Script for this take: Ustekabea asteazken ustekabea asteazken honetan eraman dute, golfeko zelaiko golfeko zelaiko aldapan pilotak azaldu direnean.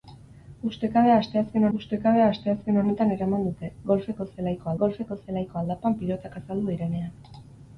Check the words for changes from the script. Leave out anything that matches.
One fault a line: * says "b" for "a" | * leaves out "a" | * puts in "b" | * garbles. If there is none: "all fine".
all fine